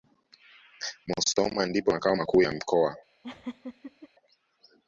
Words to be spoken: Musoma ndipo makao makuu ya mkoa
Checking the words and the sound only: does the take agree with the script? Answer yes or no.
no